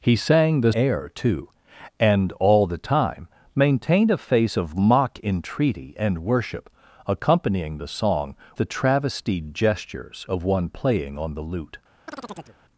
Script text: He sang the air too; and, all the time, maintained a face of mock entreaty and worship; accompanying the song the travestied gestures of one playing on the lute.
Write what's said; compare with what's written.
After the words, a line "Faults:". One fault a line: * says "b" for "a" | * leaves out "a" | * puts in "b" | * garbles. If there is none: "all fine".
He sang the air too; and, all the time, maintained a face of mock entreaty and worship; accompanying the song the travestied gestures of one playing on the lute.
Faults:
all fine